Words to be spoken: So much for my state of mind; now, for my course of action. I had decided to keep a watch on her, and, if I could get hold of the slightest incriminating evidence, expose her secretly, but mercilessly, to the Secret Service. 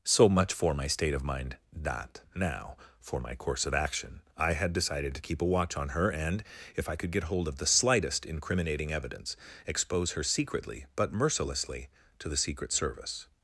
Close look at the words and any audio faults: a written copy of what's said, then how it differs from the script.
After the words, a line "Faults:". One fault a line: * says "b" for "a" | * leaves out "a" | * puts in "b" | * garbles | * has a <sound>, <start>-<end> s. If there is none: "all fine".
So much for my state of mind; that now, for my course of action. I had decided to keep a watch on her, and, if I could get hold of the slightest incriminating evidence, expose her secretly, but mercilessly, to the Secret Service.
Faults:
* puts in "that"